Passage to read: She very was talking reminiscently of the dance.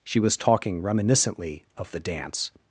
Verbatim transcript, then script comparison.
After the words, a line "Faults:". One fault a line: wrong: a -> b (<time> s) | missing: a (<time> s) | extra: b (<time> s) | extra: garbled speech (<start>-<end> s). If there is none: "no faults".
She was talking reminiscently of the dance.
Faults:
missing: very (0.2 s)